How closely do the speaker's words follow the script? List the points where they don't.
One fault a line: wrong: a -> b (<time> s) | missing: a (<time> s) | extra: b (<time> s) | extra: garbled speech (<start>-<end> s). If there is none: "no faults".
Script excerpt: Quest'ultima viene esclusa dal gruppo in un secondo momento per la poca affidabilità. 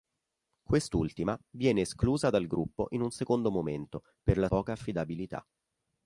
no faults